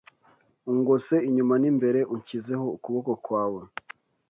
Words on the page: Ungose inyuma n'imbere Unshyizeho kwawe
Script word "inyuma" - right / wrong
right